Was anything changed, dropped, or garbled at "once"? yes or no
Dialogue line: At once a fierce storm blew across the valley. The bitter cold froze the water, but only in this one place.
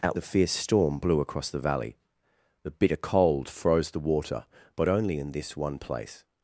yes